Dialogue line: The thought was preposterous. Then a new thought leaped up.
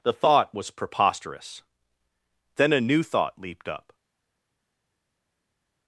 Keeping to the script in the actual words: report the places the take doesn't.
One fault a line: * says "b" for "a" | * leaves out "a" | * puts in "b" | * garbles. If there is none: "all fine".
all fine